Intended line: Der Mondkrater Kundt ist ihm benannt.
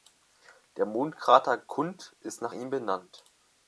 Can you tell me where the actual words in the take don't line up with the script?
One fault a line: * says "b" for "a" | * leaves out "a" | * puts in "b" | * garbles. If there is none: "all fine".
* puts in "nach"